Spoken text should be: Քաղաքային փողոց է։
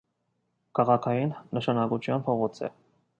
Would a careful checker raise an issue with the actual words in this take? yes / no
yes